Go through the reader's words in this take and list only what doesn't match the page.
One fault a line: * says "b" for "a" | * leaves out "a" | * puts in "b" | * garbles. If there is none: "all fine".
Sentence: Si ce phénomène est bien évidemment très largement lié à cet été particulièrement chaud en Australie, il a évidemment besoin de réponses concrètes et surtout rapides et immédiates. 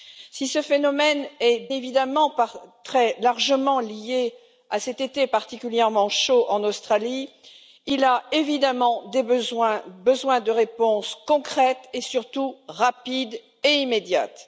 * leaves out "bien"